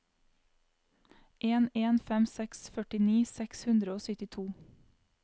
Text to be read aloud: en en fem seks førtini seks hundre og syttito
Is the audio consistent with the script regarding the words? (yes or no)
yes